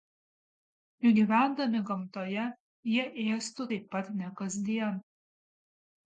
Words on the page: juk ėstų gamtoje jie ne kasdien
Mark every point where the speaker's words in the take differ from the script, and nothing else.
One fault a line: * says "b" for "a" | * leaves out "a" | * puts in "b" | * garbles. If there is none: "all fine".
* says "gyvendami" for "ėstų"
* puts in "ėstų taip pat"